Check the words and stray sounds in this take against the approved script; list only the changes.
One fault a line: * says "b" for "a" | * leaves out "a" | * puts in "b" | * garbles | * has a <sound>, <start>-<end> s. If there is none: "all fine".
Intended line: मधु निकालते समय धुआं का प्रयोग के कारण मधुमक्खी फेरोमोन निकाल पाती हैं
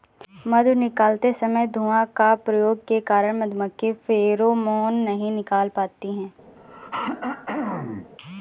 * puts in "नहीं"
* has a throat clearing, 6.6-8.1 s